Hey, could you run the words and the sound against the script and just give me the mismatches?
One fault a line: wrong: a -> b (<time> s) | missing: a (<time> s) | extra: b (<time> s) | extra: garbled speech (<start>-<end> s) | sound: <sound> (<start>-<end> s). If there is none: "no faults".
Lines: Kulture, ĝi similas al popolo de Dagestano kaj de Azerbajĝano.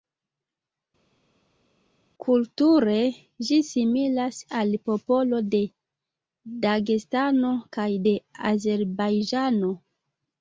no faults